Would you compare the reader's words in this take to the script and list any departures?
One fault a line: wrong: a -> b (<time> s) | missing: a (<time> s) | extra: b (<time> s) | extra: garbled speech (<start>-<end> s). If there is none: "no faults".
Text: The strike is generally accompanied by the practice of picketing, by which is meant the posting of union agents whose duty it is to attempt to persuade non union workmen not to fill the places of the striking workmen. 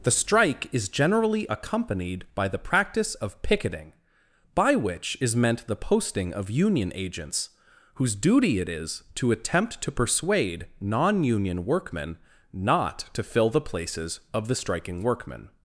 no faults